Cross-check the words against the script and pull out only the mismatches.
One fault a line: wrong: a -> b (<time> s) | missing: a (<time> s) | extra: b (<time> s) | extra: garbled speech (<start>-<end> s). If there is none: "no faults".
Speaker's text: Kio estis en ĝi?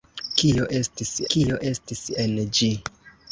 extra: kio estis (1.3 s)